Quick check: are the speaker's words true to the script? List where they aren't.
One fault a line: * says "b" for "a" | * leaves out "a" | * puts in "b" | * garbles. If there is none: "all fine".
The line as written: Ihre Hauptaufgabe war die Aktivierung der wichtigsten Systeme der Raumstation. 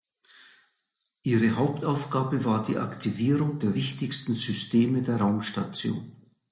all fine